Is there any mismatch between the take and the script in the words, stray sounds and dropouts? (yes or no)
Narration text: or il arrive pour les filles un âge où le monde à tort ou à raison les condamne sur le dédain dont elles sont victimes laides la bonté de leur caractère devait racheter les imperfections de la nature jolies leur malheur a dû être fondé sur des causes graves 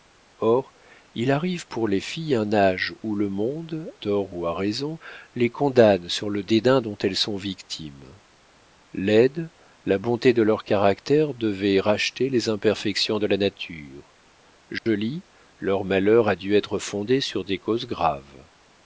yes